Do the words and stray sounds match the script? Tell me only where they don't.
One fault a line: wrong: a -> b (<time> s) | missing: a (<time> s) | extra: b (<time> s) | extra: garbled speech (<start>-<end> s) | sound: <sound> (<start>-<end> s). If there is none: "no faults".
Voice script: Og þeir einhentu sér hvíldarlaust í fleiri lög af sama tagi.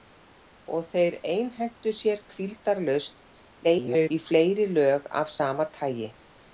extra: garbled speech (3.6-4.1 s)